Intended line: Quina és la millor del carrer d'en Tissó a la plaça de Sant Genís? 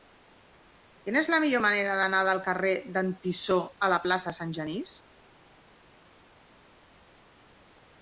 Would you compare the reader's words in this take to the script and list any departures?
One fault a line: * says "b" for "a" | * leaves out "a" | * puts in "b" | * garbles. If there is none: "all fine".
* puts in "manera d'anar"